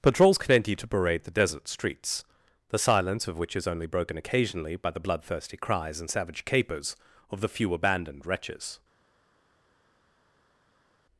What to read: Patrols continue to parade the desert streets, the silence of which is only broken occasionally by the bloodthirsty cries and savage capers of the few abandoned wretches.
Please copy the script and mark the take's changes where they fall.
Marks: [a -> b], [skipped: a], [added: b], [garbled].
Patrols continue to parade the desert streets, the silence of which is only broken occasionally by the bloodthirsty cries and savage capers of the few abandoned wretches.